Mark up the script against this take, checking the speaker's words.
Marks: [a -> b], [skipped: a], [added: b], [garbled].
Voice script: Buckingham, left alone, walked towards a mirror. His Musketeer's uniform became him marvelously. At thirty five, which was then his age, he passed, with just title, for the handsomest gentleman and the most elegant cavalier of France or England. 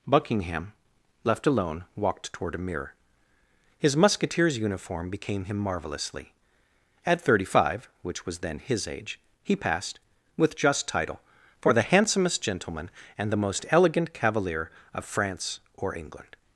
Buckingham, left alone, walked [towards -> toward] a mirror. His Musketeer's uniform became him marvelously. At thirty five, which was then his age, he passed, with just title, for the handsomest gentleman and the most elegant cavalier of France or England.